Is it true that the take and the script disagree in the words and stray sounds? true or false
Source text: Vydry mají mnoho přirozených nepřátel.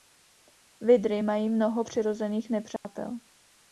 true